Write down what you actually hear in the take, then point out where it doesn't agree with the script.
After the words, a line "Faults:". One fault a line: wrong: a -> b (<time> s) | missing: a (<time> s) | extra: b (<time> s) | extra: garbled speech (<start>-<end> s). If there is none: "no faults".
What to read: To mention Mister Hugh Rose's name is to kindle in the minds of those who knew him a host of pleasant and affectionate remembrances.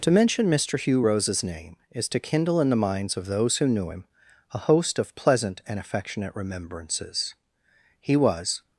To mention Mister Hugh Rose's name is to kindle in the minds of those who knew him a host of pleasant and affectionate remembrances. He was
Faults:
extra: He was (8.0 s)